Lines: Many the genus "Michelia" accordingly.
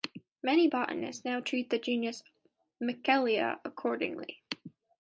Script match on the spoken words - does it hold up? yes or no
no